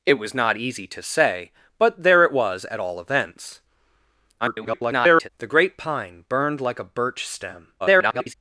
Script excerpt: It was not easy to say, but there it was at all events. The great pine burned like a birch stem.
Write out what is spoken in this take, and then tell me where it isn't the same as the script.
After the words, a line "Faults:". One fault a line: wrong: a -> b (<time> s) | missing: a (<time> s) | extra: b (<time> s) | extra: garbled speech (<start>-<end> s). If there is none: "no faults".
It was not easy to say, but there it was at all events. [garbled] The great pine burned like a birch stem. [garbled]
Faults:
extra: garbled speech (4.4-5.3 s)
extra: garbled speech (7.8-8.3 s)